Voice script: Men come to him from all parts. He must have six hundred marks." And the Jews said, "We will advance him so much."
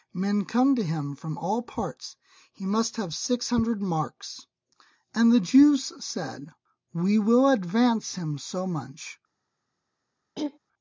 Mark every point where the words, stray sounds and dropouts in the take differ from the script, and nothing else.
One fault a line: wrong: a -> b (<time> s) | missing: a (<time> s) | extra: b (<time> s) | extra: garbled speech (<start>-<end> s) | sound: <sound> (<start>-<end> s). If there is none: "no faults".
sound: throat clearing (10.3-10.6 s)